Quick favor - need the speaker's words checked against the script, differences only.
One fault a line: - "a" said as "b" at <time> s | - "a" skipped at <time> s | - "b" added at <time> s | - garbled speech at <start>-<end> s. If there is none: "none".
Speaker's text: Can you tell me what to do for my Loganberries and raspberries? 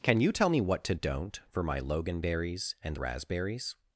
- "do" said as "don't" at 0.9 s